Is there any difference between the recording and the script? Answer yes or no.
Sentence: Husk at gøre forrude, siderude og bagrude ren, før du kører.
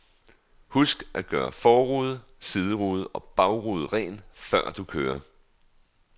no